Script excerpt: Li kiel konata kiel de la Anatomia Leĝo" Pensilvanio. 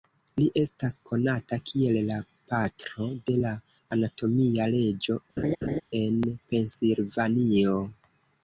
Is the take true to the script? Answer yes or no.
no